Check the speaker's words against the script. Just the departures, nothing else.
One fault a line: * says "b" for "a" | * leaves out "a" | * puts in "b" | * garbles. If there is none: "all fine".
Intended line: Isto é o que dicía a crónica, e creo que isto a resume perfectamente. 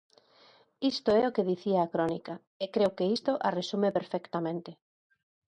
all fine